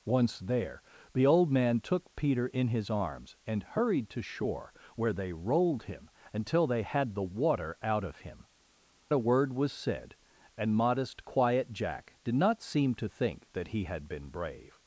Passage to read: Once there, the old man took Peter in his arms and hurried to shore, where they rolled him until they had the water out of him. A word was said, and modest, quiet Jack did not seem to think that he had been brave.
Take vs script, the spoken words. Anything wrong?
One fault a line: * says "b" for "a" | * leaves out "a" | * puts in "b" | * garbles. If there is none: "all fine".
all fine